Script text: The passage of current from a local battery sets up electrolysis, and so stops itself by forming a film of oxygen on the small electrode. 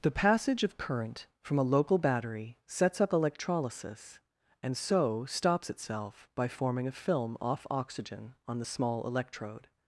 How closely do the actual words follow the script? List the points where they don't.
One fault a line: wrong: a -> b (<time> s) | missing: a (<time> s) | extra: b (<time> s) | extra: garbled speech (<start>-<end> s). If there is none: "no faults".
wrong: of -> off (7.4 s)